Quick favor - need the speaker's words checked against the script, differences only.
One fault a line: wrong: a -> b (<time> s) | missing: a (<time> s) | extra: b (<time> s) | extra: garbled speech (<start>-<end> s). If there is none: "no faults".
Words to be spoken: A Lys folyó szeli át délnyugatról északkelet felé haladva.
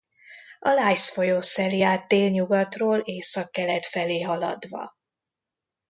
no faults